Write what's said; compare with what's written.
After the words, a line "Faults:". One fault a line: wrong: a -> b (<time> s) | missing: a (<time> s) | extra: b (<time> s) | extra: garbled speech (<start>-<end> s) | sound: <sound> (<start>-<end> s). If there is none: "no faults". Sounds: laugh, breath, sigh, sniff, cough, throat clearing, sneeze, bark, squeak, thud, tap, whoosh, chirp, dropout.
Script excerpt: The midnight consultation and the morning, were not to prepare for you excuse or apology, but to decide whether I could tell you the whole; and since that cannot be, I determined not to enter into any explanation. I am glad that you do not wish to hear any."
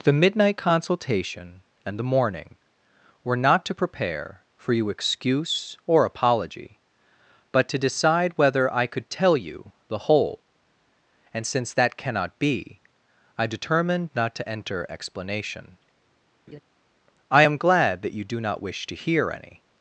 The midnight consultation and the morning, were not to prepare for you excuse or apology, but to decide whether I could tell you the whole; and since that cannot be, I determined not to enter explanation. I am glad that you do not wish to hear any."
Faults:
missing: into any (14.9 s)
sound: laugh (16.5-16.6 s)